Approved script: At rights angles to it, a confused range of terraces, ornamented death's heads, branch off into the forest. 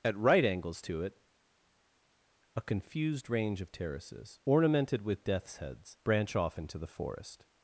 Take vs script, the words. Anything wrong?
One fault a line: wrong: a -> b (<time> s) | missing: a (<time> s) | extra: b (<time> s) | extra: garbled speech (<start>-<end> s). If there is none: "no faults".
wrong: rights -> right (0.2 s)
extra: with (5.0 s)